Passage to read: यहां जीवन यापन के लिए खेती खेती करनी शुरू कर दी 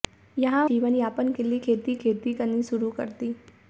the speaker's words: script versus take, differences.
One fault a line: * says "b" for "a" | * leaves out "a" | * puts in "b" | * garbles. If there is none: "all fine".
all fine